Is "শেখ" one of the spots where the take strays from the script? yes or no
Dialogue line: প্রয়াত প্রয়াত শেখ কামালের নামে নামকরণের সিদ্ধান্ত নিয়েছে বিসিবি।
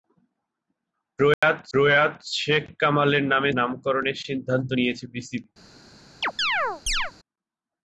no